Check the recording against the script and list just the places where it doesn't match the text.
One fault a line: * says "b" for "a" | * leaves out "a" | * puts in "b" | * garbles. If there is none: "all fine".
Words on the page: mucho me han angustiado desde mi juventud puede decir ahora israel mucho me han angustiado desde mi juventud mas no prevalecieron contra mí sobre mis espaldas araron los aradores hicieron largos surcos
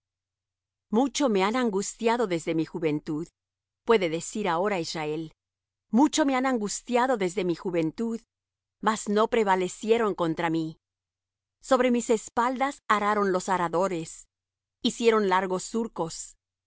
all fine